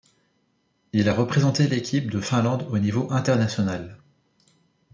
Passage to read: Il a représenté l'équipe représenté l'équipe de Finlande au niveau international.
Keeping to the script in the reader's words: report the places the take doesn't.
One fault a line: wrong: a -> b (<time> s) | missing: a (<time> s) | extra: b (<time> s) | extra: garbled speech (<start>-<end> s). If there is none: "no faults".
missing: représenté l'équipe (2.1 s)